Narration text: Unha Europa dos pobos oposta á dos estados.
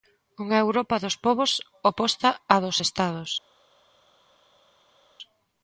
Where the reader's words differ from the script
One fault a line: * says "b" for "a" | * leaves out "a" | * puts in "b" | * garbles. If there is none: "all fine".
all fine